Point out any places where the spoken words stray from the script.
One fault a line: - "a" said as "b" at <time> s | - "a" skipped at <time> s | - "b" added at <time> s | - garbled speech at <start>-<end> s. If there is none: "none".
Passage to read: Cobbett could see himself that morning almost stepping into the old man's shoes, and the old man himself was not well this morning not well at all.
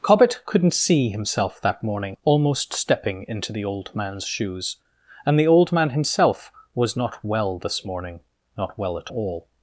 - "could" said as "couldn't" at 0.5 s